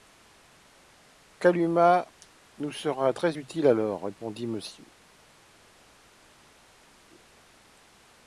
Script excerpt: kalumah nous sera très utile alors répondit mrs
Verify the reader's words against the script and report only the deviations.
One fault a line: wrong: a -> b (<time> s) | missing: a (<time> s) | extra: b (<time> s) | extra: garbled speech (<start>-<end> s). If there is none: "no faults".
no faults